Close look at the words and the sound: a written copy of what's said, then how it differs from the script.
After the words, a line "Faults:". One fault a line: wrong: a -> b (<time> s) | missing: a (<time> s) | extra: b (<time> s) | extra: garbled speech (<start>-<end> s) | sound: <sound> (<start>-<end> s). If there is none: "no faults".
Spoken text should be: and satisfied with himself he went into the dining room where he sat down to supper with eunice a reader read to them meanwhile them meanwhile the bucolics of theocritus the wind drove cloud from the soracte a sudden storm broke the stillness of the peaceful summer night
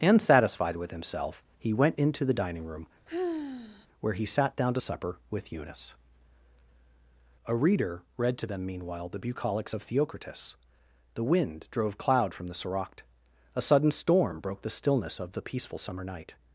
and satisfied with himself he went into the dining room where he sat down to supper with eunice a reader read to them meanwhile the bucolics of theocritus the wind drove cloud from the soracte a sudden storm broke the stillness of the peaceful summer night
Faults:
sound: sigh (3.1-3.9 s)
missing: them meanwhile (9.1 s)